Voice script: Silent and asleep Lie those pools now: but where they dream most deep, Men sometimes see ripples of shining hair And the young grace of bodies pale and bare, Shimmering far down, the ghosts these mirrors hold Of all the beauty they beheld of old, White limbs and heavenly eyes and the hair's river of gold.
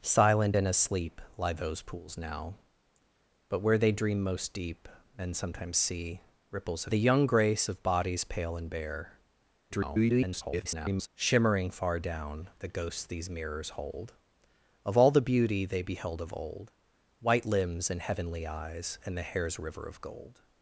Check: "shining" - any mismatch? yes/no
yes